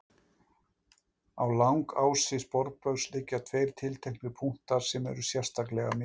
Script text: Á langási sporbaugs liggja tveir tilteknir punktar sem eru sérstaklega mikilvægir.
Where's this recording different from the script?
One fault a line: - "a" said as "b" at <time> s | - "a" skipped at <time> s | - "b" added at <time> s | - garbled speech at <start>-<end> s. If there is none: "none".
none